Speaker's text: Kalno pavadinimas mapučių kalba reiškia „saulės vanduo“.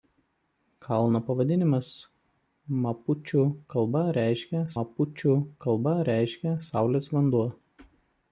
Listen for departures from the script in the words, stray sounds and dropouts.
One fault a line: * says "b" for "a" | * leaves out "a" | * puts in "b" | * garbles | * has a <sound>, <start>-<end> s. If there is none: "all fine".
* puts in "mapučių kalba reiškia"